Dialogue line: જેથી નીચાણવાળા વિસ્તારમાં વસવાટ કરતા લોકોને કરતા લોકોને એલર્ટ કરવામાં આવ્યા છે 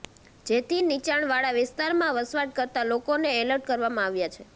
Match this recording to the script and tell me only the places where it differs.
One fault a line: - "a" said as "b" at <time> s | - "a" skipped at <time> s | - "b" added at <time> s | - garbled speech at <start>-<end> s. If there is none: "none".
- "કરતા લોકોને" skipped at 3.3 s